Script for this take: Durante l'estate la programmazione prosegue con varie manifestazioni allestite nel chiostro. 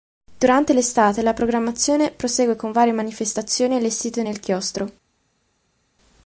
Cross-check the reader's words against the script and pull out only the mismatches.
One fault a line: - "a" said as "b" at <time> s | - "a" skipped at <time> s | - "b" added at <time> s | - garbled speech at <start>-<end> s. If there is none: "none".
none